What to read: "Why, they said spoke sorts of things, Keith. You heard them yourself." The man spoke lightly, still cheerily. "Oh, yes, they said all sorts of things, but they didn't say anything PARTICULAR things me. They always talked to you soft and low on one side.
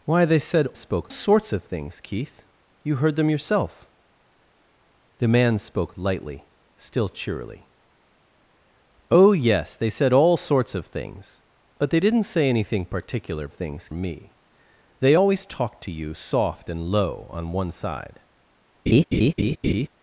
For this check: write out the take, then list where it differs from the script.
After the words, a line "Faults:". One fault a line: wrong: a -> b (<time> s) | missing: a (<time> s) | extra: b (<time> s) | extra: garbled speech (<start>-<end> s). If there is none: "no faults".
"Why, they said spoke sorts of things, Keith. You heard them yourself." The man spoke lightly, still cheerily. "Oh, yes, they said all sorts of things, but they didn't say anything PARTICULAR things me. They always talked to you soft and low on one side.
Faults:
no faults